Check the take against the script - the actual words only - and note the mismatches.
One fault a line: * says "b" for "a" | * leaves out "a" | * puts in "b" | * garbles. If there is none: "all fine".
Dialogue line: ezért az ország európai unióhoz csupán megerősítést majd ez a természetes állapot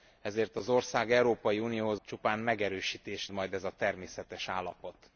all fine